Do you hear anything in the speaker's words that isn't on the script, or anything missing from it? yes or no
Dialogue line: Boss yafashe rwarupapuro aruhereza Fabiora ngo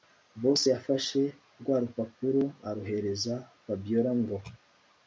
no